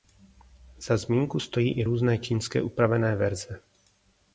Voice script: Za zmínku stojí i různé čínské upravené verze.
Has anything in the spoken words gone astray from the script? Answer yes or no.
no